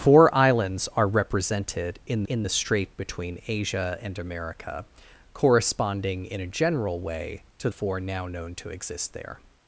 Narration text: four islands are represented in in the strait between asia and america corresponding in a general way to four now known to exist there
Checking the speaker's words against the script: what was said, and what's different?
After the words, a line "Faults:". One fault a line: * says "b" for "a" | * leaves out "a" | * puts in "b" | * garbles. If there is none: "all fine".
four islands are represented in in the strait between asia and america corresponding in a general way to four now known to exist there
Faults:
all fine